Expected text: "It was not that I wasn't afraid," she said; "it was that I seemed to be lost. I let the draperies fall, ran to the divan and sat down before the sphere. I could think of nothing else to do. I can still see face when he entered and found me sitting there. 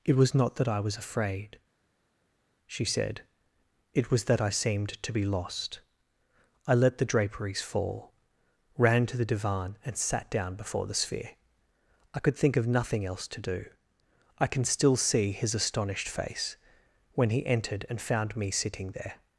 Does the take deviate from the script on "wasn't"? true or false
true